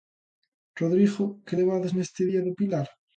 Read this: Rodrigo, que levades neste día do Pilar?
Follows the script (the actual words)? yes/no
yes